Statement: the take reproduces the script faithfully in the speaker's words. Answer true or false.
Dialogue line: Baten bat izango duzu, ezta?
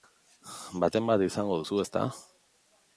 true